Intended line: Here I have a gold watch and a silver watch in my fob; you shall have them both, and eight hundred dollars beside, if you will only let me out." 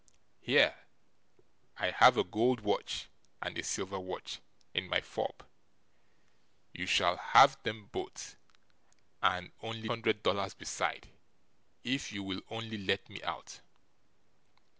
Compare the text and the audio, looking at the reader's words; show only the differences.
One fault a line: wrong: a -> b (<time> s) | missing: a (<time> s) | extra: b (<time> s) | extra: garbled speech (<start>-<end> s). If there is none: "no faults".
wrong: eight -> only (9.6 s)